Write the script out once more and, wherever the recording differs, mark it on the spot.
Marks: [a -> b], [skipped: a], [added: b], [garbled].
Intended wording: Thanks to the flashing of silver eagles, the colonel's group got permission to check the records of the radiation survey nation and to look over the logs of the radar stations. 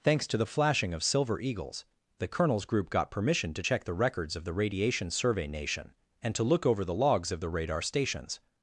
Thanks to the flashing of silver eagles, the colonel's group got permission to check the records of the radiation survey nation and to look over the logs of the radar stations.